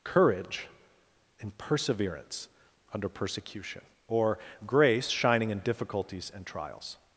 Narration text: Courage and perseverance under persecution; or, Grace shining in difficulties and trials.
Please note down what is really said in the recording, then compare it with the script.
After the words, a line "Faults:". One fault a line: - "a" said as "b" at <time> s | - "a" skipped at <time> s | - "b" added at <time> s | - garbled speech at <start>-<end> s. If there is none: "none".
Courage in perseverance under persecution; or, Grace shining in difficulties and trials.
Faults:
- "and" said as "in" at 1.4 s